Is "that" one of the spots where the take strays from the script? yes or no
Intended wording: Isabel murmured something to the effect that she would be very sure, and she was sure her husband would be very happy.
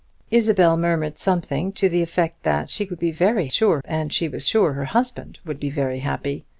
no